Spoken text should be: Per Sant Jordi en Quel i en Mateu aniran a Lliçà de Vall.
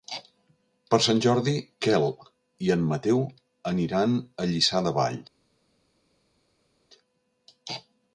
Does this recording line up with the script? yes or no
no